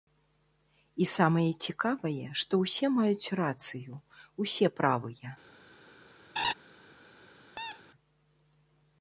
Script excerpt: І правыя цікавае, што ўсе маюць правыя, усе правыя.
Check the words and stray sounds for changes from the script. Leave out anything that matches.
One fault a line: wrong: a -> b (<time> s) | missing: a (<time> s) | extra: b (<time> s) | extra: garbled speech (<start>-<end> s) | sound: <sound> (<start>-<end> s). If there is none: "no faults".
wrong: правыя -> самае (1.2 s)
wrong: правыя -> рацыю (3.4 s)
sound: laugh (6.4-6.5 s)
sound: squeak (7.6-7.8 s)